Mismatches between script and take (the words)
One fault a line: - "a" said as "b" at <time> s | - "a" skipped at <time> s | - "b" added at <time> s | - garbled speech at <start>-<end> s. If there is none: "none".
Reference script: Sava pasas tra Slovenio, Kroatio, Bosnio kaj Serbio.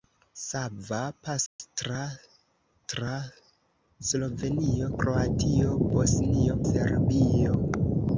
- "tra" added at 2.9 s
- "kaj" skipped at 6.6 s